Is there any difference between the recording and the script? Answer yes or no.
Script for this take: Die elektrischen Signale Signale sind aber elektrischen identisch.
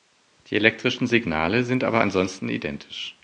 yes